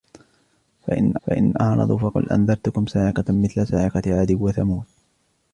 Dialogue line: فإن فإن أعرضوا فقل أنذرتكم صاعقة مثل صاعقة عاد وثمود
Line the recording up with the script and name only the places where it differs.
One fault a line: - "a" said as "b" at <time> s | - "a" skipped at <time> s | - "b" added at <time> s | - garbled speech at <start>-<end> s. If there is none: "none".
none